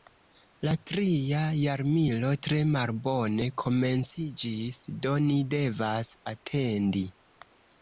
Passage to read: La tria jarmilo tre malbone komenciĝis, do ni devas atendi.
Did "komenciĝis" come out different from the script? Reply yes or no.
no